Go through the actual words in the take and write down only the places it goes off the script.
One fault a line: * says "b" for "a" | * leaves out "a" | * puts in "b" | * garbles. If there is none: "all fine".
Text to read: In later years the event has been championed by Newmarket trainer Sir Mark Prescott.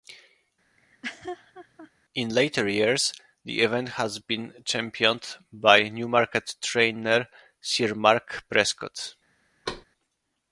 all fine